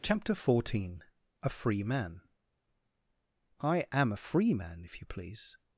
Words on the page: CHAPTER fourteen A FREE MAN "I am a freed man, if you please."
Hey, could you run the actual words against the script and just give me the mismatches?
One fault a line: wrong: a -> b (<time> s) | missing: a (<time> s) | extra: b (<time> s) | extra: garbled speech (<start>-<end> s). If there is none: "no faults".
wrong: freed -> free (4.1 s)